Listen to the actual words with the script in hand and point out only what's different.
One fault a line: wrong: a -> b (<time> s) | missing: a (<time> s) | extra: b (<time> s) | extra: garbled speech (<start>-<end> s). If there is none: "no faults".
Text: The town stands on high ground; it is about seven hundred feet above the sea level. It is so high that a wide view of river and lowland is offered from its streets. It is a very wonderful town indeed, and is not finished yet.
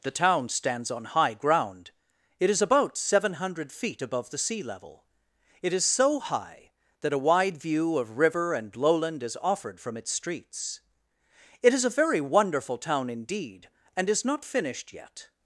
no faults